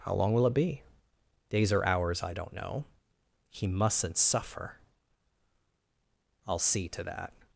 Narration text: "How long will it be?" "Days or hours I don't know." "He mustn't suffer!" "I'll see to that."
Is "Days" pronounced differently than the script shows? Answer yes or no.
no